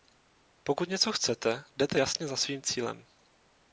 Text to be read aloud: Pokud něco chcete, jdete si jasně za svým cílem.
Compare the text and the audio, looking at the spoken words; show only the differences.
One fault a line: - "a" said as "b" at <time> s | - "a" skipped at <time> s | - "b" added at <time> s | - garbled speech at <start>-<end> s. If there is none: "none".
- "si" skipped at 2.0 s